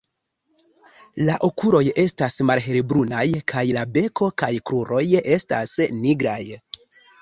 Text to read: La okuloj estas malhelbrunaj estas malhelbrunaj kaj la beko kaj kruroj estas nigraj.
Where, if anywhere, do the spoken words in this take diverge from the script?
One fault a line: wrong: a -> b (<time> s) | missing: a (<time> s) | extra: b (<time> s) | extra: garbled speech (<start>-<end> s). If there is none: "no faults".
missing: estas malhelbrunaj (3.2 s)